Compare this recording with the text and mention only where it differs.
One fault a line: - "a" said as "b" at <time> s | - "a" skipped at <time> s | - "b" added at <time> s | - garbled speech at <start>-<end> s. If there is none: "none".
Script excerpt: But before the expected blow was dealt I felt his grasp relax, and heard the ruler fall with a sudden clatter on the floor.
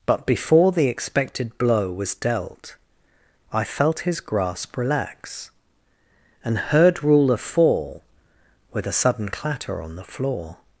- "the" skipped at 7.0 s